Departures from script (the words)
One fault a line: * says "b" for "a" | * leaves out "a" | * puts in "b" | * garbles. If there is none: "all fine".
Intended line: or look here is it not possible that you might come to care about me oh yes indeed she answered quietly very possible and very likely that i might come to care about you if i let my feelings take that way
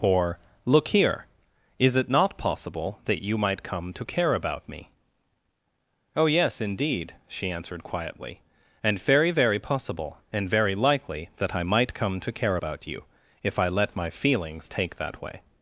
* puts in "and very"